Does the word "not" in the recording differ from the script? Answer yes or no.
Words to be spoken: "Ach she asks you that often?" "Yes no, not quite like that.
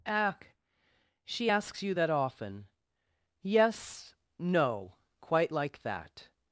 yes